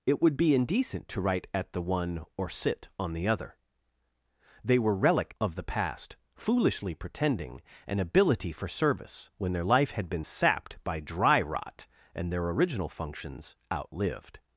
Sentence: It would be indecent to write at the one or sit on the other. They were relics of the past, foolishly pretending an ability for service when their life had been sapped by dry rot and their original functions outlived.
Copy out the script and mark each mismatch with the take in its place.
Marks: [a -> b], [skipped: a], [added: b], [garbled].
It would be indecent to write at the one or sit on the other. They were [relics -> relic] of the past, foolishly pretending an ability for service when their life had been sapped by dry rot and their original functions outlived.